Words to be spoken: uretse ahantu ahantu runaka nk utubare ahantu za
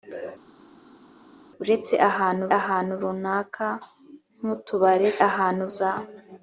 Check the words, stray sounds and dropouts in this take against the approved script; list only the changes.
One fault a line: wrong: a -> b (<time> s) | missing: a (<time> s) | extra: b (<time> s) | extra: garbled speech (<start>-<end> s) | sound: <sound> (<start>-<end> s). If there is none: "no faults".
no faults